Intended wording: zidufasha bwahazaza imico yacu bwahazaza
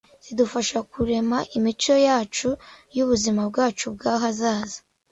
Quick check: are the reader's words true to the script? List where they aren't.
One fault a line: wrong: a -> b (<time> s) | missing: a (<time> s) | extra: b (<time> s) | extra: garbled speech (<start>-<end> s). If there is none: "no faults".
wrong: bwahazaza -> kurema (0.9 s)
extra: yubuzima bwacu (3.0 s)